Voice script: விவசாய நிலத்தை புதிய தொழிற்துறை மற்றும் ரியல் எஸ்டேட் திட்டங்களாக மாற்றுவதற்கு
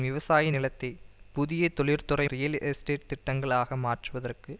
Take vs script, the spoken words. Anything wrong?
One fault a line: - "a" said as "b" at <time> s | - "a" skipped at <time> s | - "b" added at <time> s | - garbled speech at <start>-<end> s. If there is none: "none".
- "மற்றும்" skipped at 2.3 s